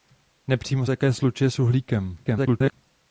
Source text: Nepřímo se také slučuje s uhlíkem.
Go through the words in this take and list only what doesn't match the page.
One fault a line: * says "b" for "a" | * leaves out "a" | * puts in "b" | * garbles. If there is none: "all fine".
* leaves out "se"
* garbles